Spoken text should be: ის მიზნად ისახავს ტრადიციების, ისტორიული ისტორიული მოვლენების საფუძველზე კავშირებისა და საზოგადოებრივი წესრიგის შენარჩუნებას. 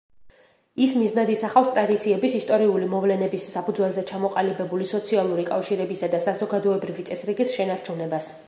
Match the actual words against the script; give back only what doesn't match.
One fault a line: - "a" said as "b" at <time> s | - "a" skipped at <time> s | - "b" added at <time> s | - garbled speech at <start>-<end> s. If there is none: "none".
- "ისტორიული" skipped at 2.9 s
- "ჩამოყალიბებული სოციალური" added at 4.1 s